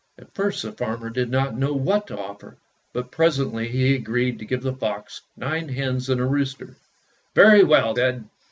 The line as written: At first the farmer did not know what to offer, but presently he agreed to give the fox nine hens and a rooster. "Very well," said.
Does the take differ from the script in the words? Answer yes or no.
no